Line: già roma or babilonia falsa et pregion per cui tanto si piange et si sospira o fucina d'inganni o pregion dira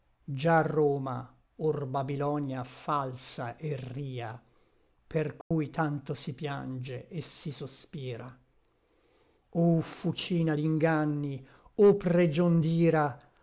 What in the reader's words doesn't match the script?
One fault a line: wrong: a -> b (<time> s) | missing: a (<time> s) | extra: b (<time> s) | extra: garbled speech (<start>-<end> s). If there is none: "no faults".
wrong: pregion -> ria (3.8 s)